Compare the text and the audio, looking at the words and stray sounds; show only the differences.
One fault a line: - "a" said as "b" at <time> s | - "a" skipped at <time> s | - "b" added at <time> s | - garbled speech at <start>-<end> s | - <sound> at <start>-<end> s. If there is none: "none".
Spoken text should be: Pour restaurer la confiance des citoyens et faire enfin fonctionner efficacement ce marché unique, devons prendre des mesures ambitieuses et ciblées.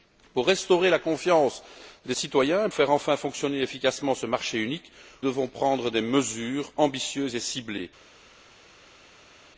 none